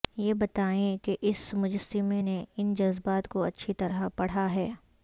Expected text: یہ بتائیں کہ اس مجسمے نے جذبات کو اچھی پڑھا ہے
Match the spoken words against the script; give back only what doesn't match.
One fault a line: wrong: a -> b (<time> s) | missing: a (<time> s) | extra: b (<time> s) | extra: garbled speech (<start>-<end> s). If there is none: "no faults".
extra: ان (2.6 s)
extra: طرح (3.7 s)